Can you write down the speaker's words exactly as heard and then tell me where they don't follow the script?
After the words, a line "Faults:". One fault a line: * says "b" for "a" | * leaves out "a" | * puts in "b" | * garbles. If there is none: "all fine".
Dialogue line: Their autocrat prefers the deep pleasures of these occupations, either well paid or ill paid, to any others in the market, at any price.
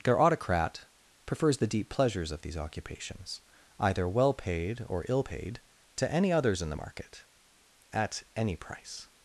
Their autocrat prefers the deep pleasures of these occupations, either well paid or ill paid, to any others in the market, at any price.
Faults:
all fine